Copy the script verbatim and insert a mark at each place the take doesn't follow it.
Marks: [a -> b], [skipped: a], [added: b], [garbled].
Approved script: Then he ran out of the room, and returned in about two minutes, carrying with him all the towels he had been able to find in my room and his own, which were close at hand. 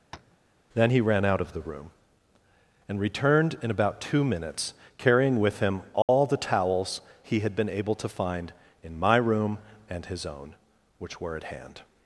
Then he ran out of the room, and returned in about two minutes, carrying with him all the towels he had been able to find in my room and his own, which were [skipped: close] at hand.